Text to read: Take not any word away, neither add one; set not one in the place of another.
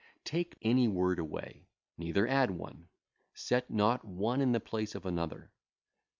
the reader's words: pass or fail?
fail